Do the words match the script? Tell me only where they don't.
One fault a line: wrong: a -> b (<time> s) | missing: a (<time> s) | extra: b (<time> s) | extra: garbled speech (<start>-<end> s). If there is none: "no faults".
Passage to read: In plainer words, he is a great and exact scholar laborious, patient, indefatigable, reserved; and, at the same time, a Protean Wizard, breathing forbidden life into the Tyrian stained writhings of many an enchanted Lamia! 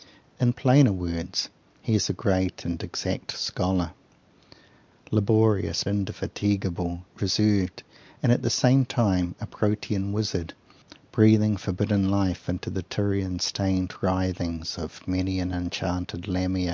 missing: patient (5.8 s)